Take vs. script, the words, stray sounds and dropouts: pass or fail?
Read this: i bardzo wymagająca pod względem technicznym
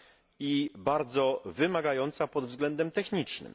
pass